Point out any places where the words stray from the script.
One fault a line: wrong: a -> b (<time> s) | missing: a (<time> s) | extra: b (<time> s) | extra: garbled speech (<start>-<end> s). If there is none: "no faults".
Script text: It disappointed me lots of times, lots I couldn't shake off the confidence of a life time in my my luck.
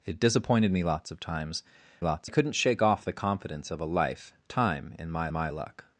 no faults